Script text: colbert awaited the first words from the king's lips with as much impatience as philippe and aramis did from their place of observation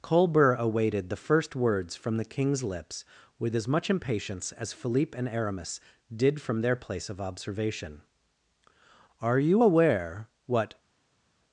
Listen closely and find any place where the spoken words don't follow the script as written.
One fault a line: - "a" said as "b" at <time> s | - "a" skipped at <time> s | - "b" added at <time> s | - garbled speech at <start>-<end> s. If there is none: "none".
- "are you aware what" added at 9.2 s